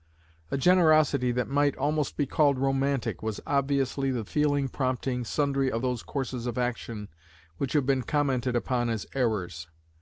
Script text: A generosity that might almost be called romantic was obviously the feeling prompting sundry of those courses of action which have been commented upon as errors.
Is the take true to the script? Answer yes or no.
yes